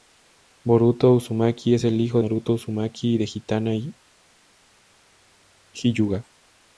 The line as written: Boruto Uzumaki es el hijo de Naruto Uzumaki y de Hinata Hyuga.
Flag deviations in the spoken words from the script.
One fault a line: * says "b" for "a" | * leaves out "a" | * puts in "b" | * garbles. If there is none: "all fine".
* leaves out "de"